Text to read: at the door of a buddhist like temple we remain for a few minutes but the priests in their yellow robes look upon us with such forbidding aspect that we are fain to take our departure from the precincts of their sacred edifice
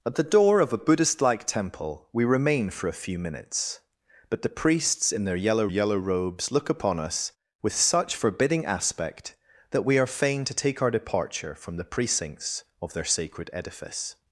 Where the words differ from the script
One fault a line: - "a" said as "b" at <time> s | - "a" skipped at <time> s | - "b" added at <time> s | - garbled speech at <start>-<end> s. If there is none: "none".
- "yellow" added at 5.7 s